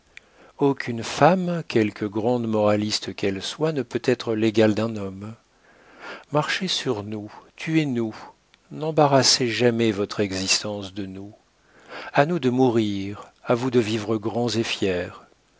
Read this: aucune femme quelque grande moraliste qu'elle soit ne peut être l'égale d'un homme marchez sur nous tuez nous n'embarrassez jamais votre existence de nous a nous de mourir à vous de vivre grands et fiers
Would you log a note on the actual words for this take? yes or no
no